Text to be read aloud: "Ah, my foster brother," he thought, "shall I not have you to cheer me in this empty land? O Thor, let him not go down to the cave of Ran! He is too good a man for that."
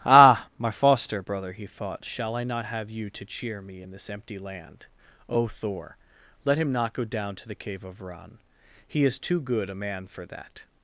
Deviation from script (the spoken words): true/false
false